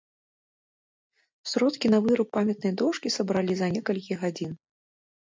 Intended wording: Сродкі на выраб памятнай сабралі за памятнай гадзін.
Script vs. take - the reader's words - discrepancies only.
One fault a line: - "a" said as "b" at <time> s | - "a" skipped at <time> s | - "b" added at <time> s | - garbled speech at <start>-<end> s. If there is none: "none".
- "дошкі" added at 2.8 s
- "памятнай" said as "некалькі" at 3.7 s